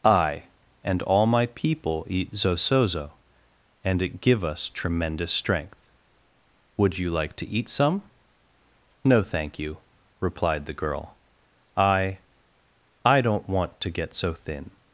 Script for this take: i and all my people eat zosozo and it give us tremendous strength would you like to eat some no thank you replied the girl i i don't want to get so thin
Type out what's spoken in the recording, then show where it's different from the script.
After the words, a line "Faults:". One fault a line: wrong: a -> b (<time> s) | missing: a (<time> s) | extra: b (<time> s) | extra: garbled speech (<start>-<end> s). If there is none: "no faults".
i and all my people eat zosozo and it give us tremendous strength would you like to eat some no thank you replied the girl i i don't want to get so thin
Faults:
no faults